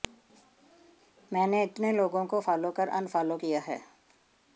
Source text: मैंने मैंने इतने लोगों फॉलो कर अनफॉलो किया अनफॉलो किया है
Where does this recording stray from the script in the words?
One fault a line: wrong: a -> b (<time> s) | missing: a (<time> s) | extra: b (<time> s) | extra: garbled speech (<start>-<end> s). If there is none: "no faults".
missing: मैंने (1.6 s)
extra: को (2.2 s)
missing: अनफॉलो किया (3.6 s)